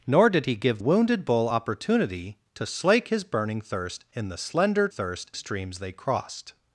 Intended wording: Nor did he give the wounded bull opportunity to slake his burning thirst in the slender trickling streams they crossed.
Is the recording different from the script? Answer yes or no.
yes